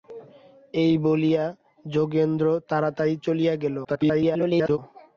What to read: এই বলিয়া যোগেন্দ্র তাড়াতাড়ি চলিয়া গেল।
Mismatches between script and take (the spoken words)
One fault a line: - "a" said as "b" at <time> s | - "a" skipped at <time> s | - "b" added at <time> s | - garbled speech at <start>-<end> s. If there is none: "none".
- garbled speech at 3.8-4.8 s